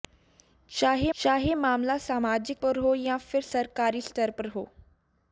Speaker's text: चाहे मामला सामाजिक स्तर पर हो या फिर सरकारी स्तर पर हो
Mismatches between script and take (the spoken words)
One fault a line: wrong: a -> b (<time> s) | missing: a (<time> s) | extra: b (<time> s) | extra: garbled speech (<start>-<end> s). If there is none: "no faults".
extra: चाहे (1.1 s)
missing: स्तर (2.6 s)